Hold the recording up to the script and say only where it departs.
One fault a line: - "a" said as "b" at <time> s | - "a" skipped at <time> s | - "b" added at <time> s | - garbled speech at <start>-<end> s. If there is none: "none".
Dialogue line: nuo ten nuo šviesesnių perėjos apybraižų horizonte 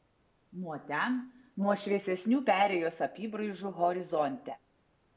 none